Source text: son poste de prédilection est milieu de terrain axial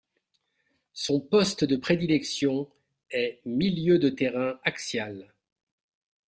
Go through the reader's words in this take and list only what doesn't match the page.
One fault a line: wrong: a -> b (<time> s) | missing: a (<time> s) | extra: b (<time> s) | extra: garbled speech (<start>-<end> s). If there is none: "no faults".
no faults